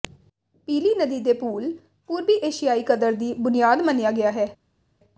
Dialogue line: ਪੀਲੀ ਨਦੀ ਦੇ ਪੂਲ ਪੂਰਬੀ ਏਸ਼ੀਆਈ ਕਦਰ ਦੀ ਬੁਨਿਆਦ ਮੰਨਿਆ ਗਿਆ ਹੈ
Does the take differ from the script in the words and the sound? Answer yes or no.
no